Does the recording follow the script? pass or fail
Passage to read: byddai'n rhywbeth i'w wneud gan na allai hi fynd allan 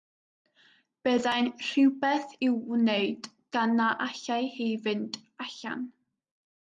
pass